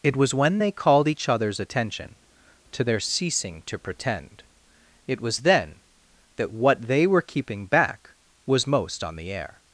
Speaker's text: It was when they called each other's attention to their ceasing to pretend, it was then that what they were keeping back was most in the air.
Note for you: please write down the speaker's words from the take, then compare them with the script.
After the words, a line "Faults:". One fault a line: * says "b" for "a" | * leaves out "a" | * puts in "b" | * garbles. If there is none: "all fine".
It was when they called each other's attention to their ceasing to pretend, it was then that what they were keeping back was most on the air.
Faults:
* says "on" for "in"